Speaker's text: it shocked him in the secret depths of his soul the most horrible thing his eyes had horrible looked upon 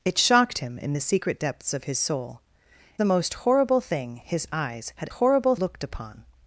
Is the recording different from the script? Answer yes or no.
no